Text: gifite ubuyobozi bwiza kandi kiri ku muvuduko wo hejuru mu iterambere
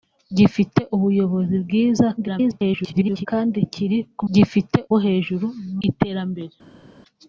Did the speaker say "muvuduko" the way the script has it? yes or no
no